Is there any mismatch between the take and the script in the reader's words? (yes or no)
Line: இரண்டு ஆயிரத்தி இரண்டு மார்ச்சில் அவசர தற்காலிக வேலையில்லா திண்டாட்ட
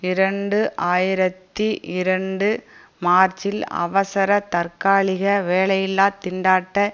no